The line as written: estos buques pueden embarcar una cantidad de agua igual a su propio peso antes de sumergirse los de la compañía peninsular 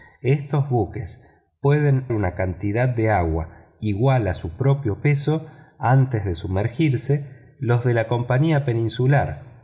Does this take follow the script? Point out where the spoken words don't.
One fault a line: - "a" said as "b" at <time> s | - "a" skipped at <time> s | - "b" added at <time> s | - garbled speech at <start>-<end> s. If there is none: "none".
- "embarcar" skipped at 2.1 s